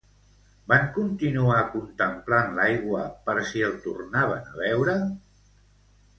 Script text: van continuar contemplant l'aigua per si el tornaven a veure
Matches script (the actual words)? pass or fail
pass